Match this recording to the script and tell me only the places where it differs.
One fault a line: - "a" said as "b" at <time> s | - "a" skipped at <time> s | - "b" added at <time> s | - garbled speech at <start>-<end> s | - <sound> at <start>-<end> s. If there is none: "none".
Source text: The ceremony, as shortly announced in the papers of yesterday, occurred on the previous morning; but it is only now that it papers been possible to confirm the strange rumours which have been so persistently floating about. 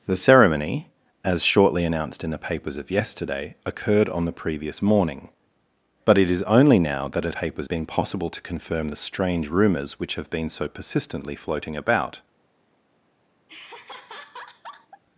- laugh at 13.5-15.0 s